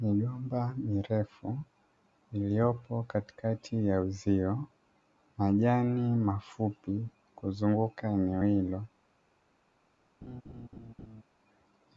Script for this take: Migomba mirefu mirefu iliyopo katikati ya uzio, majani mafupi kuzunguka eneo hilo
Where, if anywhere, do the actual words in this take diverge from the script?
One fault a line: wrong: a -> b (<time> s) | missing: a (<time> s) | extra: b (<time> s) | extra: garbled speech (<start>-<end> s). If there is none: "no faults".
missing: mirefu (1.6 s)